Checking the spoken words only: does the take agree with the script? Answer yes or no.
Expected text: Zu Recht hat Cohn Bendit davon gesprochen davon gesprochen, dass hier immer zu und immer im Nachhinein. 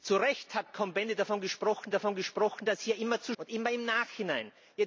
yes